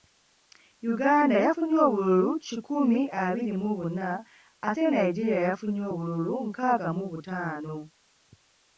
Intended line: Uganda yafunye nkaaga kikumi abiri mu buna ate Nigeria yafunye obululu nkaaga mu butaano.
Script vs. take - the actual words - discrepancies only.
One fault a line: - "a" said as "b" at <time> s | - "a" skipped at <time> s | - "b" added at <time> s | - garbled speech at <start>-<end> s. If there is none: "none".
- "nkaaga" said as "obululu" at 1.9 s